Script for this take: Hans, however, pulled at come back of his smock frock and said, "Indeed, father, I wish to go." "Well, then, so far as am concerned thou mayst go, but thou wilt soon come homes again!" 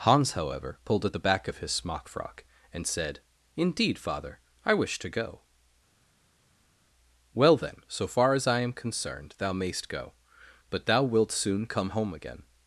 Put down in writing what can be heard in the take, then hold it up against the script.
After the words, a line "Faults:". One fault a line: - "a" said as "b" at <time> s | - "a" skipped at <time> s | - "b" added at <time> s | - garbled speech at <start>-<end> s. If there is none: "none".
Hans, however, pulled at the back of his smock frock and said, "Indeed, father, I wish to go." "Well, then, so far as I am concerned thou mayst go, but thou wilt soon come home again!"
Faults:
- "come" said as "the" at 1.1 s
- "I" added at 8.5 s
- "homes" said as "home" at 11.9 s